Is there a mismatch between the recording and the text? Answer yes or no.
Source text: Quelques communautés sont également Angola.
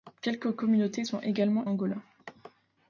no